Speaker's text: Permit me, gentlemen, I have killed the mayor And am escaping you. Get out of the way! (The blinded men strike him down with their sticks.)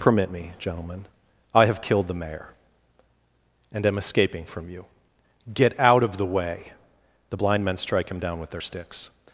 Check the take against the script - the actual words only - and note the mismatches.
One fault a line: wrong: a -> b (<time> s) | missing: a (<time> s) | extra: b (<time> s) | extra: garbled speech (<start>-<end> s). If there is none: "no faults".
extra: from (4.5 s)
wrong: blinded -> blind (7.3 s)